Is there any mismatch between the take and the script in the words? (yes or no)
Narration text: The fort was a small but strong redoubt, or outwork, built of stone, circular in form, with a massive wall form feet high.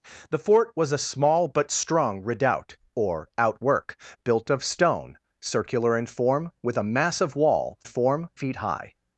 no